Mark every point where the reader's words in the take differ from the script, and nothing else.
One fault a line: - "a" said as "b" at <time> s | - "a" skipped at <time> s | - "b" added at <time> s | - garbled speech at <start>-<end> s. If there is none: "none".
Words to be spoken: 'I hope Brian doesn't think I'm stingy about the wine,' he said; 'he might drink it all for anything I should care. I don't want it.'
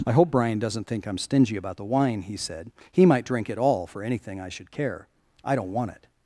none